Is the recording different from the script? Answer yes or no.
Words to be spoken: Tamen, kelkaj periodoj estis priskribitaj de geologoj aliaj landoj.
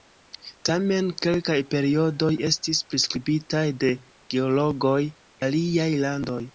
no